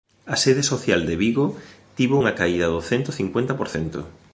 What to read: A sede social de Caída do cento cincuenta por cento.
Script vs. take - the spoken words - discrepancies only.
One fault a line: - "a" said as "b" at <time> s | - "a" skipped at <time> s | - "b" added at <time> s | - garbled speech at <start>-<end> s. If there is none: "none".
- "Vigo tivo unha" added at 1.2 s